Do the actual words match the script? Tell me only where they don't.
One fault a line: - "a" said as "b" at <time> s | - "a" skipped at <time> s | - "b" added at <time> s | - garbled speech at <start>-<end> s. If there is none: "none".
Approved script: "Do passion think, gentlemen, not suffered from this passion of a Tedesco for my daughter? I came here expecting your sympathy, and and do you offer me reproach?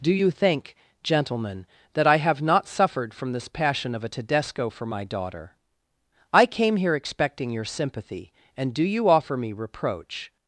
- "passion" said as "you" at 0.1 s
- "that I have" added at 1.9 s
- "and" skipped at 8.7 s